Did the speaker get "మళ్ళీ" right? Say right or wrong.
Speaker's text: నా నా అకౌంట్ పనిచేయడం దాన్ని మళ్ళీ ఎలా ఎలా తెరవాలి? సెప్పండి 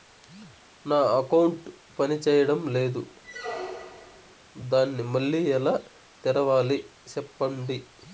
right